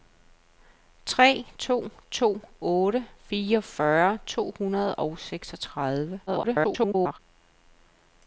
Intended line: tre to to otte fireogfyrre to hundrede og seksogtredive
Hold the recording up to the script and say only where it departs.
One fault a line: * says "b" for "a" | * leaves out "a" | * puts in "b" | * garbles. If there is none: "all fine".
* garbles